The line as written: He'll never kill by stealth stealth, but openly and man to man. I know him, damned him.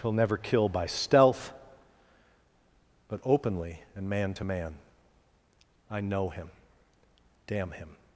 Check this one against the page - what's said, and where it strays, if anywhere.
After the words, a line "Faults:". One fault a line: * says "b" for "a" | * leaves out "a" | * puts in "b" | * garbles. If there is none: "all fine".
He'll never kill by stealth, but openly and man to man. I know him, damn him.
Faults:
* leaves out "stealth"
* says "damn" for "damned"